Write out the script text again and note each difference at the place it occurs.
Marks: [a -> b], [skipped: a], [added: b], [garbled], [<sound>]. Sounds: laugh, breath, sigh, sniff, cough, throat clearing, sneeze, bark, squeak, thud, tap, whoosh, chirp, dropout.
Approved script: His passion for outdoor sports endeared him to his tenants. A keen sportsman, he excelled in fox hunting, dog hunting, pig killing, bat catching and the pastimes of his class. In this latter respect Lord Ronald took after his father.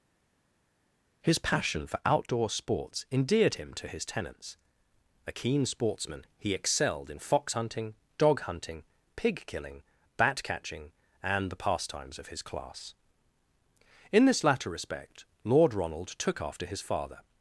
His passion for outdoor sports endeared him to his tenants. A keen sportsman, he excelled in fox hunting, dog hunting, pig killing, bat catching and the pastimes of his class. In this latter respect Lord Ronald took after his father.